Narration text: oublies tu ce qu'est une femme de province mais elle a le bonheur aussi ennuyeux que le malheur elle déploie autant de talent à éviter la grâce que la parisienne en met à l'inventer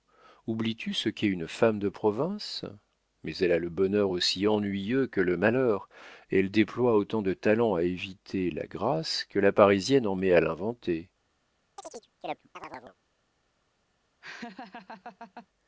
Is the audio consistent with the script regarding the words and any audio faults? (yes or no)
no